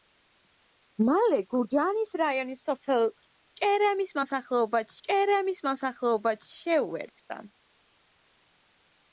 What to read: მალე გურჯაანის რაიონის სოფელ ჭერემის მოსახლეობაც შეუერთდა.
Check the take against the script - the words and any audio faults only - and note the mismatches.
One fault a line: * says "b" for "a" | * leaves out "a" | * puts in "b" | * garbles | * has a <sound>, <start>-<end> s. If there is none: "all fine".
* puts in "ჭერემის მოსახლეობაც"